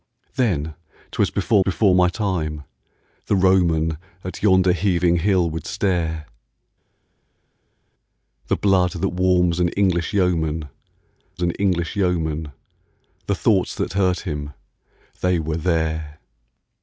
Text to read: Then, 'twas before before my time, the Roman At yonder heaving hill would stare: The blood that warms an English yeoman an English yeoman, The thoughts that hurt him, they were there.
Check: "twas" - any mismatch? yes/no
no